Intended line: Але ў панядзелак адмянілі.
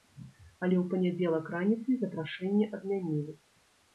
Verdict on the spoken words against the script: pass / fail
fail